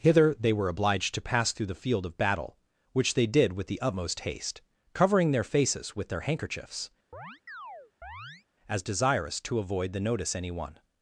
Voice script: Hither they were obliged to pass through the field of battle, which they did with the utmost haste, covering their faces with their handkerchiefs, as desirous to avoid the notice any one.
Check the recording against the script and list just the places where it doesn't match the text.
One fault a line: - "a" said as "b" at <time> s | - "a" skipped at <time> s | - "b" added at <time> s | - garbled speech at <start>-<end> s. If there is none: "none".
none